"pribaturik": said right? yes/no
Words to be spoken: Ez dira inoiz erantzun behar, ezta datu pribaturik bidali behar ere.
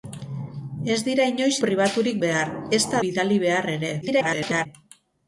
no